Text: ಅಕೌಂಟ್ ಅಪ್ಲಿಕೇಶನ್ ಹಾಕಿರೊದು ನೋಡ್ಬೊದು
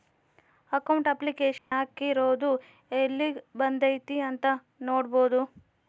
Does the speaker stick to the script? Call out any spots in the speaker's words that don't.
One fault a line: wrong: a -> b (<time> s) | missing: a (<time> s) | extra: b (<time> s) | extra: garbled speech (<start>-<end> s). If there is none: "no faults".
extra: ಯೆಲ್ಲಿಗ್ ಬಂದೈತೀ ಅಂತ (2.9 s)